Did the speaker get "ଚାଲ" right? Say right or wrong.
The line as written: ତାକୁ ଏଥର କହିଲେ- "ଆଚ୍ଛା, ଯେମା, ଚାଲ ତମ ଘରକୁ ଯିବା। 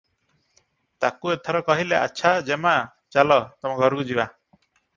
right